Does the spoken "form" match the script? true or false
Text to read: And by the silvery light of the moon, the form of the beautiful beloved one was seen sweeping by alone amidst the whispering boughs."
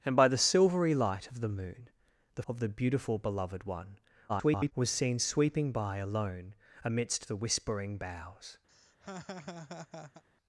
false